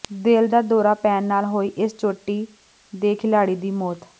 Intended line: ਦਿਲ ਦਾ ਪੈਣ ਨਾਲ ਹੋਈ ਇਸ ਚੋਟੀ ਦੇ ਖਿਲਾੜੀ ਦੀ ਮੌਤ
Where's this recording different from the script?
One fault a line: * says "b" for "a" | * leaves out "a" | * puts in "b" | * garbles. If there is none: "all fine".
* puts in "ਦੌਰਾ"